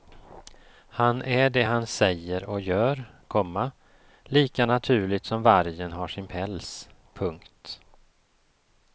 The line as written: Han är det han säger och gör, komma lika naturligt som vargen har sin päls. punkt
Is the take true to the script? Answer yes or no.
yes